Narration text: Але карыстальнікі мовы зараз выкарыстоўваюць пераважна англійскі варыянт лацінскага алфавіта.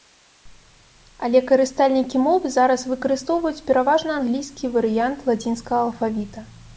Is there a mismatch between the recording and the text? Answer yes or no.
no